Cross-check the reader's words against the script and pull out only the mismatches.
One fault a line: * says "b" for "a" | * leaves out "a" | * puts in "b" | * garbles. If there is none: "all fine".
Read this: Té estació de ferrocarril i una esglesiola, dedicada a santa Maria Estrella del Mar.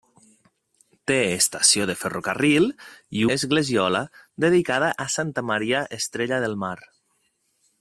* leaves out "una"